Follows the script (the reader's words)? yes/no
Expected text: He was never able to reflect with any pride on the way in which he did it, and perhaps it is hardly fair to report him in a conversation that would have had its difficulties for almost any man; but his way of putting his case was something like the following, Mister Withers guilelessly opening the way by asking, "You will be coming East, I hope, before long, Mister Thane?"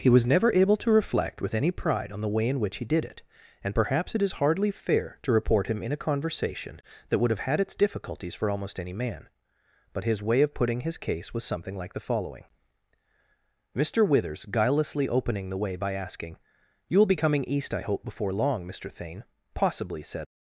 no